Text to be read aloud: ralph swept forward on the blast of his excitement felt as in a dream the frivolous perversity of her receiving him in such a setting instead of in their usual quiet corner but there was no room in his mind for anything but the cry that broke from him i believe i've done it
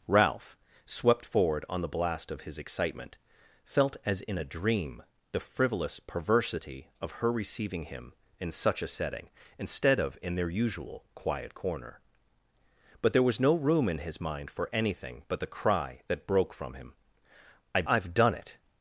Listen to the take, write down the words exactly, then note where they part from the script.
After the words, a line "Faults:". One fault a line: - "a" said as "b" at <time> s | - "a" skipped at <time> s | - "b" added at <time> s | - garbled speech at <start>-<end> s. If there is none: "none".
ralph swept forward on the blast of his excitement felt as in a dream the frivolous perversity of her receiving him in such a setting instead of in their usual quiet corner but there was no room in his mind for anything but the cry that broke from him i i've done it
Faults:
- "believe" skipped at 17.8 s